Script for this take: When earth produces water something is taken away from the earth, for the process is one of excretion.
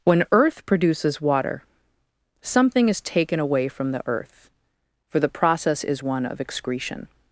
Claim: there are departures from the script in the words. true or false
false